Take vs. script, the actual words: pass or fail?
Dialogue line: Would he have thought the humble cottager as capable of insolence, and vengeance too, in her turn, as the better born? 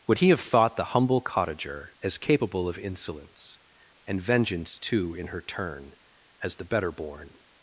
pass